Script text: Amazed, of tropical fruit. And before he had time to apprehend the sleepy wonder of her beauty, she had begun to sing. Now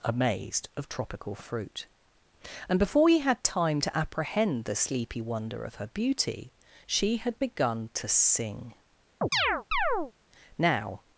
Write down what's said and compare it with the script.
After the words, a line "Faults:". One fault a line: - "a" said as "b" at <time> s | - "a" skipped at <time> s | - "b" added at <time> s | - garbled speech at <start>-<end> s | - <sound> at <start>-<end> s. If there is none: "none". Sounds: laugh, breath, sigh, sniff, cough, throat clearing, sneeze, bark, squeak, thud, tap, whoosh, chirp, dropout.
Amazed, of tropical fruit. And before he had time to apprehend the sleepy wonder of her beauty, she had begun to sing. Now
Faults:
- chirp at 9.2-10.1 s